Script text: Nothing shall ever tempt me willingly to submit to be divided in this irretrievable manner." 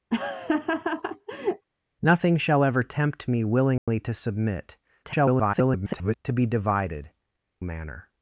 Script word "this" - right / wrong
wrong